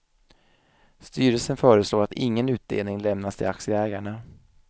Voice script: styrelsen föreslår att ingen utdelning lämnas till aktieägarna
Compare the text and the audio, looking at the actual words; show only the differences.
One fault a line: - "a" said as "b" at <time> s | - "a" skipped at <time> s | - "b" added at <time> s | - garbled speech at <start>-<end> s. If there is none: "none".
none